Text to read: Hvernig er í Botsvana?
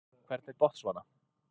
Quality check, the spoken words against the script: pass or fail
pass